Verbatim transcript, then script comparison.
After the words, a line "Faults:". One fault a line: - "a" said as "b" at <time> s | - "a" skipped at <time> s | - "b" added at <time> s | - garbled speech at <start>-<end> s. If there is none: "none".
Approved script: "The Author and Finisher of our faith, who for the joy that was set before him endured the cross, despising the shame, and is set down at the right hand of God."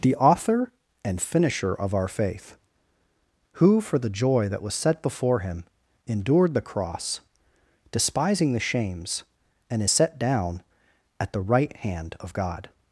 "The Author and Finisher of our faith, who for the joy that was set before him endured the cross, despising the shames, and is set down at the right hand of God."
Faults:
- "shame" said as "shames" at 8.6 s